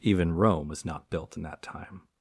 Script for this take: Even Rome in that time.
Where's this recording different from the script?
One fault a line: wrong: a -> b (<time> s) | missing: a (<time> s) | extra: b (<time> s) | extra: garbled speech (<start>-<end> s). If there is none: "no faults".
extra: was not built (0.7 s)